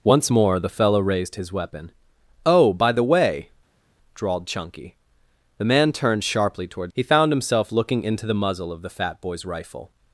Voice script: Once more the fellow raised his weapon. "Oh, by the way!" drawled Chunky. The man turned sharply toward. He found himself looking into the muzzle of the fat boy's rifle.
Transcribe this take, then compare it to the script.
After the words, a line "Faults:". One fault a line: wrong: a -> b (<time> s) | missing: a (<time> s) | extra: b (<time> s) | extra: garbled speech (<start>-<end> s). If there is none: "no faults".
Once more the fellow raised his weapon. "Oh, by the way!" drawled Chunky. The man turned sharply toward. He found himself looking into the muzzle of the fat boy's rifle.
Faults:
no faults